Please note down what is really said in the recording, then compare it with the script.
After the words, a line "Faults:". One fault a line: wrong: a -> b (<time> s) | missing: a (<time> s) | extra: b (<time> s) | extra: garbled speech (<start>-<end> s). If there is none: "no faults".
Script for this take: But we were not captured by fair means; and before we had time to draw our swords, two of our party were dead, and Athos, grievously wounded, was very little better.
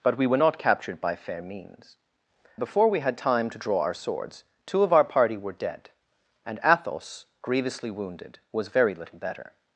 But we were not captured by fair means; before we had time to draw our swords, two of our party were dead, and Athos, grievously wounded, was very little better.
Faults:
missing: and (2.0 s)